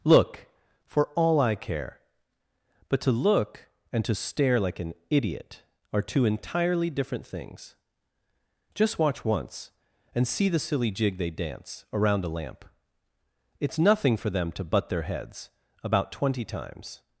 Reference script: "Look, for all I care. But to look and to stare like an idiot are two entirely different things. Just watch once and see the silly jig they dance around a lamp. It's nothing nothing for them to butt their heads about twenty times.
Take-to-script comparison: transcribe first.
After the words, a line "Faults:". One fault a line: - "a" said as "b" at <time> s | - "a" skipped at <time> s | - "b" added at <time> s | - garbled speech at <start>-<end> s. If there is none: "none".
"Look, for all I care. But to look and to stare like an idiot are two entirely different things. Just watch once and see the silly jig they dance around a lamp. It's nothing for them to butt their heads about twenty times.
Faults:
- "nothing" skipped at 14.2 s